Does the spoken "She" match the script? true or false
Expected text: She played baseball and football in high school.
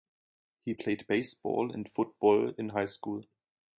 false